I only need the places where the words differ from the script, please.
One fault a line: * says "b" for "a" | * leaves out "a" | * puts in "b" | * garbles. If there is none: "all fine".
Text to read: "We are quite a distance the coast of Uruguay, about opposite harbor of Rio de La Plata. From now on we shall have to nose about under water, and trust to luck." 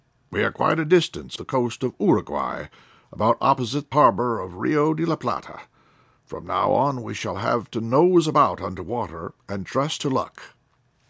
all fine